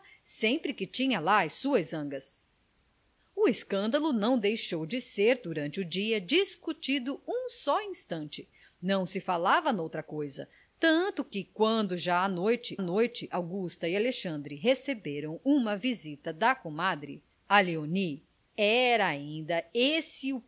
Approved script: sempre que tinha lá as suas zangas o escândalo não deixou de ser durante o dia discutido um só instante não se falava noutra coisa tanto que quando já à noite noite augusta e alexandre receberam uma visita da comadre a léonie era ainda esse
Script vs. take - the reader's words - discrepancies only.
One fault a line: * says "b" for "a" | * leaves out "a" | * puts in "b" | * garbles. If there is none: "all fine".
all fine